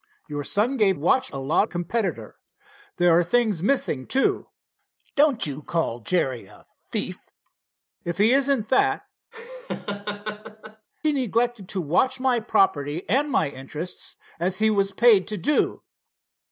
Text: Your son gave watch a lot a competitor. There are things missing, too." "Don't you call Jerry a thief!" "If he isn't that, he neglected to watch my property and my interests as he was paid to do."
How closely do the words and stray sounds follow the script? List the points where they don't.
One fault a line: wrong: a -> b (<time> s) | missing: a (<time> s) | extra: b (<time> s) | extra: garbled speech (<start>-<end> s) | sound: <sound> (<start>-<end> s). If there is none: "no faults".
sound: laugh (9.3-10.9 s)